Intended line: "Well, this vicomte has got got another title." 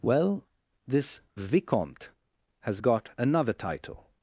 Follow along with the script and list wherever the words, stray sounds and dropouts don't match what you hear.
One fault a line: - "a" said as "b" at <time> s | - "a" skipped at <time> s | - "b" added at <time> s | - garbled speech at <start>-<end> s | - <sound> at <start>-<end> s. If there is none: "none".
- "got" skipped at 3.1 s